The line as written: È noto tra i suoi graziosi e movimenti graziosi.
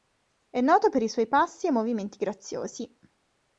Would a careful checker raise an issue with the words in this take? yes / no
yes